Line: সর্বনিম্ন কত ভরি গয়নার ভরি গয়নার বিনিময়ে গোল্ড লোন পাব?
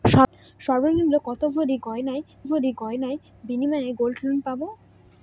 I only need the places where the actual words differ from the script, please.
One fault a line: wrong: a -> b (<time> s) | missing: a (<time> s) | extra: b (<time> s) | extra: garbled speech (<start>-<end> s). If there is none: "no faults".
no faults